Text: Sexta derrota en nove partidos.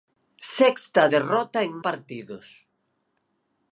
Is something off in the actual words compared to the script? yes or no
yes